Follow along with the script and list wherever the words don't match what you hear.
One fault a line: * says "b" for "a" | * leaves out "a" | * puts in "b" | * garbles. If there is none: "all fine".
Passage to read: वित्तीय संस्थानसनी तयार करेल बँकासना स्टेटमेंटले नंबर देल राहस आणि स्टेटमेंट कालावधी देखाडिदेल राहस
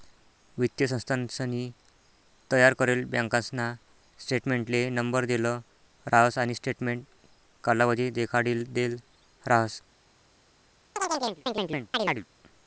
all fine